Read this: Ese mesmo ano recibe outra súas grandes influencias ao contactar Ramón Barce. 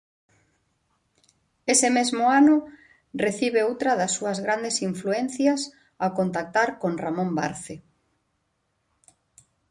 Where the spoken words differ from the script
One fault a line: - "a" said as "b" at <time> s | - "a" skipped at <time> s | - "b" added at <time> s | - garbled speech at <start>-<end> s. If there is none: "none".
- "das" added at 4.0 s
- "con" added at 6.8 s